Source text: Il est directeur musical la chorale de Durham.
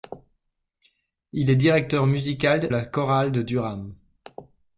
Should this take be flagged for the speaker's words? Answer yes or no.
no